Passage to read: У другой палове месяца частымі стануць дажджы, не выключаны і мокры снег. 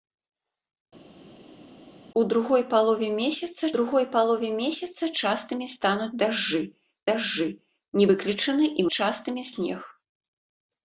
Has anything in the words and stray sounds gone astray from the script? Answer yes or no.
yes